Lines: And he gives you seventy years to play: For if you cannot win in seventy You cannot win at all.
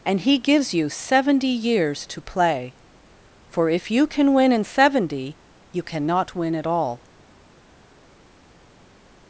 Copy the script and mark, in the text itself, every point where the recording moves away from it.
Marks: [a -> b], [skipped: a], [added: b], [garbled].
And he gives you seventy years to play: For if you [cannot -> can] win in seventy You cannot win at all.